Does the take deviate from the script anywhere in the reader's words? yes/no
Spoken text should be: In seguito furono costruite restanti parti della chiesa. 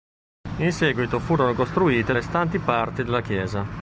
no